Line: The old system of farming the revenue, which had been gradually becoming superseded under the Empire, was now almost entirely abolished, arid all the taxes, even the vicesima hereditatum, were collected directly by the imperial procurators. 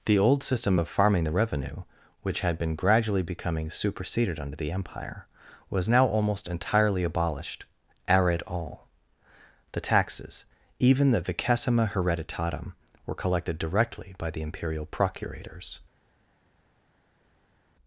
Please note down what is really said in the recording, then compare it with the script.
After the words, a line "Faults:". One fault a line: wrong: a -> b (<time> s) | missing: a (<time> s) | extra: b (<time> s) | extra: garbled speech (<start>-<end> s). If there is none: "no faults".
The old system of farming the revenue, which had been gradually becoming superseded under the Empire, was now almost entirely abolished, arid all the taxes, even the vicesima hereditatum, were collected directly by the imperial procurators.
Faults:
no faults